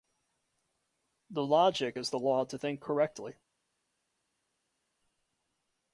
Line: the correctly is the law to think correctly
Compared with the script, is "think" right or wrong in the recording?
right